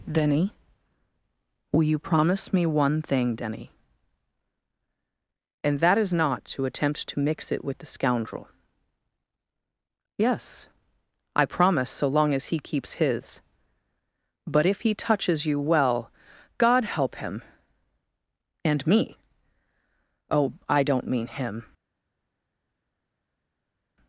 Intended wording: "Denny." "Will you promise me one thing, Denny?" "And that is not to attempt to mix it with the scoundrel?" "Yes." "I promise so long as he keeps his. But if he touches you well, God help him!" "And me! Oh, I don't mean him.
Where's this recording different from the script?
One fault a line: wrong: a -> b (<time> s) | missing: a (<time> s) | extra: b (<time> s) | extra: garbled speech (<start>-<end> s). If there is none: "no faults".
no faults